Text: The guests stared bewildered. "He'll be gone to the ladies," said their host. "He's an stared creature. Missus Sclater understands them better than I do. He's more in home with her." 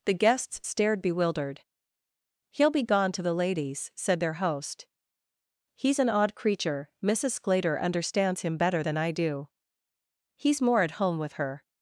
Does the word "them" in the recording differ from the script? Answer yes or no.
yes